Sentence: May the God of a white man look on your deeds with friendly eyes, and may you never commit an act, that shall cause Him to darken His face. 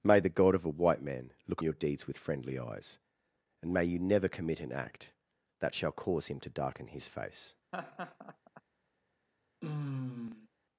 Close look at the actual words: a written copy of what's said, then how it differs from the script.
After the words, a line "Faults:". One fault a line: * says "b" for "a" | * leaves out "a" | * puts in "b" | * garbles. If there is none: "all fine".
May the God of a white man look your deeds with friendly eyes, and may you never commit an act, that shall cause Him to darken His face.
Faults:
* leaves out "on"